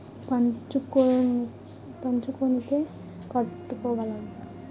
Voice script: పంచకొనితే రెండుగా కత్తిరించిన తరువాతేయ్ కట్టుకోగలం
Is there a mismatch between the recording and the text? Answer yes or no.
yes